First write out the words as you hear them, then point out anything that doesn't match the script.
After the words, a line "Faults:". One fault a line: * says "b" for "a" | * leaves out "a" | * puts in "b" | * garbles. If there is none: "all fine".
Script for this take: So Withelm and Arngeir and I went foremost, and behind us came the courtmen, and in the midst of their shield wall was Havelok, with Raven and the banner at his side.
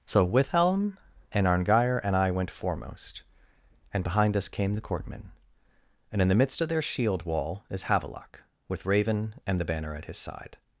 So Withelm and Arngeir and I went foremost, and behind us came the courtmen, and in the midst of their shield wall is Havelok, with Raven and the banner at his side.
Faults:
* says "is" for "was"